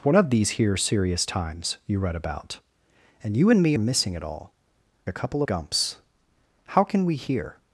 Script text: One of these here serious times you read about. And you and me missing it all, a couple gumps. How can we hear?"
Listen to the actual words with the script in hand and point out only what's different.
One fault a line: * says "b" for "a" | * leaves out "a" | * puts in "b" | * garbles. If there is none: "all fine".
all fine